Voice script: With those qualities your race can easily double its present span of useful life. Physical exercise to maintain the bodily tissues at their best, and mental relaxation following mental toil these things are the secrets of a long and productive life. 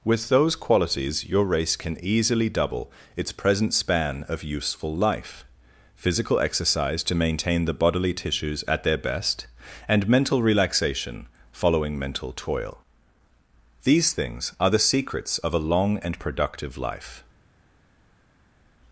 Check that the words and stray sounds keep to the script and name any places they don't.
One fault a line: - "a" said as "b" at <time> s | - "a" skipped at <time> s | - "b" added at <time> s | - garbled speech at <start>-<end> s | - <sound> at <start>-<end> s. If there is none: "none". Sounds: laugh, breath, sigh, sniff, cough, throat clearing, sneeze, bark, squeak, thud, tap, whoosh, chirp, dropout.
none